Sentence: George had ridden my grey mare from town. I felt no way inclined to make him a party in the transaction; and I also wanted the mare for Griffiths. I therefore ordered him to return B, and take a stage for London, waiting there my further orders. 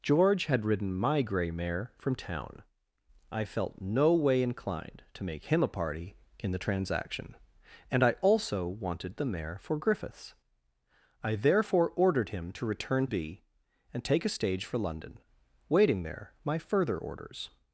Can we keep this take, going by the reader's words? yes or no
yes